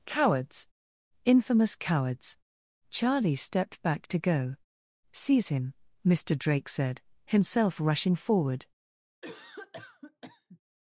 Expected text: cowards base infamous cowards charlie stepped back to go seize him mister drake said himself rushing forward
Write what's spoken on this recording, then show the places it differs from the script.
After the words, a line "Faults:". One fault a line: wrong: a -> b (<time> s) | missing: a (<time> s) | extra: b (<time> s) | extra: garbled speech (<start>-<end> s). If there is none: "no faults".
cowards infamous cowards charlie stepped back to go seize him mister drake said himself rushing forward
Faults:
missing: base (0.7 s)